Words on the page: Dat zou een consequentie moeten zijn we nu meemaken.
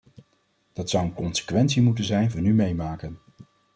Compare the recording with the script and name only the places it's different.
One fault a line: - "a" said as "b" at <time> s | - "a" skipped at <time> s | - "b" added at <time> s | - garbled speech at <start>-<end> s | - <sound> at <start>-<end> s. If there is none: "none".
none